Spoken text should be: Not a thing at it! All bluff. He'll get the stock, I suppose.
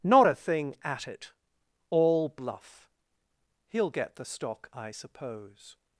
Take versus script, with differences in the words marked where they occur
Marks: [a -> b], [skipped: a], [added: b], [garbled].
Not a thing at it! All bluff. He'll get the stock, I suppose.